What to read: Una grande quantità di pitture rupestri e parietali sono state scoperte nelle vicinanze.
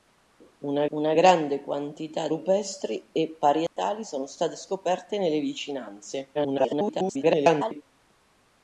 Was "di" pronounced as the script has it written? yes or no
no